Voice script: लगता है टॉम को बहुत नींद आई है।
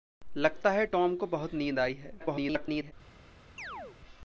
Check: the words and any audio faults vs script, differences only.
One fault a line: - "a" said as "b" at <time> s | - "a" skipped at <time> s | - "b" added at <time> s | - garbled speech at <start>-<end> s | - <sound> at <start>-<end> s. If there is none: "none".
- garbled speech at 2.2-2.9 s
- chirp at 3.6-4.0 s